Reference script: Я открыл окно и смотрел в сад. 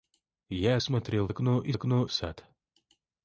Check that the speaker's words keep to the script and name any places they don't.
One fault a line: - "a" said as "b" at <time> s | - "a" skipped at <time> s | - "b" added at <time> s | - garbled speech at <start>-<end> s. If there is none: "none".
- "открыл" said as "смотрел" at 0.8 s
- "смотрел" said as "окно" at 1.7 s